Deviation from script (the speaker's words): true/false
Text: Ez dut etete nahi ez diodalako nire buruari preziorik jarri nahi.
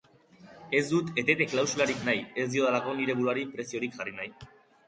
true